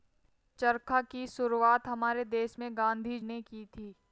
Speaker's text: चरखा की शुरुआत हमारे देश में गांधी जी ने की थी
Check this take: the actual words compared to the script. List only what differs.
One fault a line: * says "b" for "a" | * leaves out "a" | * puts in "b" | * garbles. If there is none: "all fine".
* leaves out "जी"